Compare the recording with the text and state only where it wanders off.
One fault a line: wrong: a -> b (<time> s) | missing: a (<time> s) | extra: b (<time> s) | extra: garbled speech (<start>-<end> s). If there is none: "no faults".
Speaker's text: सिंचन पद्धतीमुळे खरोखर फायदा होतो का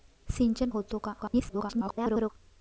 missing: पद्धतीमुळे खरोखर फायदा (0.7 s)
extra: garbled speech (1.2-2.3 s)